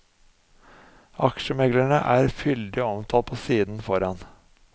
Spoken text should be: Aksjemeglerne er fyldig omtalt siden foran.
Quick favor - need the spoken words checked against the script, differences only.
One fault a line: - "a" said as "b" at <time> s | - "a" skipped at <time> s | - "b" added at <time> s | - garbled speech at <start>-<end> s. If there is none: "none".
- "på" added at 3.2 s